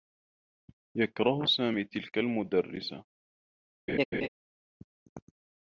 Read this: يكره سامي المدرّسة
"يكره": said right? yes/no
yes